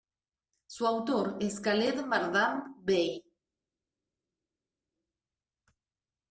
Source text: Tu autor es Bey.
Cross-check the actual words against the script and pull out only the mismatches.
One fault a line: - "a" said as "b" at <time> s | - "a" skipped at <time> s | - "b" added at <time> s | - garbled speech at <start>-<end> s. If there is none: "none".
- "Tu" said as "Su" at 0.7 s
- "Khaled Mardam" added at 1.6 s